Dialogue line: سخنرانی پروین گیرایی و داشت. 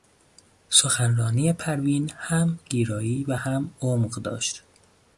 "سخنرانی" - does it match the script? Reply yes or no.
yes